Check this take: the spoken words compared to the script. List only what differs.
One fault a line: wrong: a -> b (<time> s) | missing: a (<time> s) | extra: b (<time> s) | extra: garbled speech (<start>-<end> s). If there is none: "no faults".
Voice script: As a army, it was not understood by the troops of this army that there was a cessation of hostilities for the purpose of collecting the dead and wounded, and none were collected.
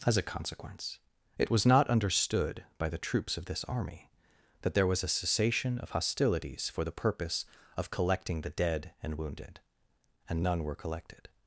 wrong: army -> consequence (0.2 s)